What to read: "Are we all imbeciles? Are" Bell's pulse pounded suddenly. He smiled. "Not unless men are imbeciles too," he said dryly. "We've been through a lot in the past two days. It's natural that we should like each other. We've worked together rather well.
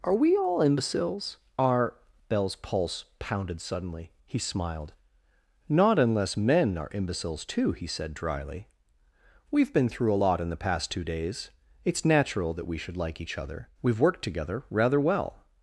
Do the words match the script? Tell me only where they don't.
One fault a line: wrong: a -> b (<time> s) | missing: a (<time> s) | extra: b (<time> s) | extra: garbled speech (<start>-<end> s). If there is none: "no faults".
no faults